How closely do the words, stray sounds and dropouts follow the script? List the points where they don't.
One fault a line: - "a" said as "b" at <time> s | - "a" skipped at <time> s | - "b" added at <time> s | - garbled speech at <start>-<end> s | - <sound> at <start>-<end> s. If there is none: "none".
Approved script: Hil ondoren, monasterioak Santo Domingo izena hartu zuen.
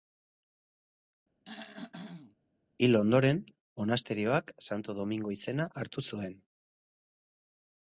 - throat clearing at 1.5-2.4 s